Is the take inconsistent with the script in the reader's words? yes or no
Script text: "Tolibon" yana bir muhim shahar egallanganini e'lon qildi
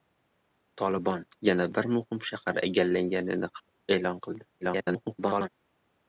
yes